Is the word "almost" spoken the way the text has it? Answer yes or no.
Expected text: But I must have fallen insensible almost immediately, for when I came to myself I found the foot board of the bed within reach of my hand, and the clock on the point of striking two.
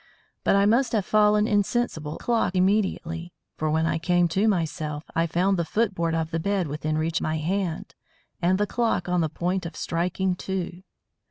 no